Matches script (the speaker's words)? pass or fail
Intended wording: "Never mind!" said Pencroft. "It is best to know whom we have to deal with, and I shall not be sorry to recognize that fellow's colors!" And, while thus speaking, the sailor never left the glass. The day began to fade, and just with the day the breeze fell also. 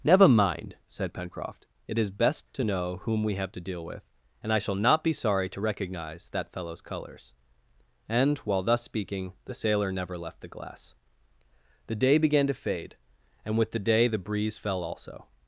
fail